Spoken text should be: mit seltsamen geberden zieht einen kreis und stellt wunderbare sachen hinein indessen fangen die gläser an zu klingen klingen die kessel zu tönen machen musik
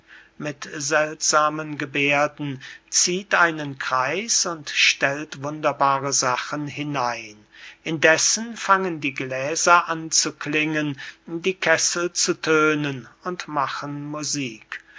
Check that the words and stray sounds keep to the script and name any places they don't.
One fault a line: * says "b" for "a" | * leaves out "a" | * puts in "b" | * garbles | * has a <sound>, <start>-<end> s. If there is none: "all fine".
* leaves out "klingen"
* puts in "und"